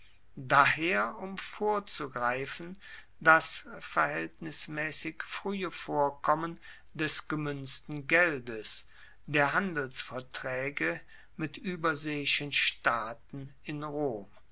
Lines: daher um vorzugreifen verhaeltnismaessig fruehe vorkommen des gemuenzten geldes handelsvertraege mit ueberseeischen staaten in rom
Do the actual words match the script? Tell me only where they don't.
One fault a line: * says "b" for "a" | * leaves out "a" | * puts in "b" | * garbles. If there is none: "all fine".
* puts in "das"
* puts in "der"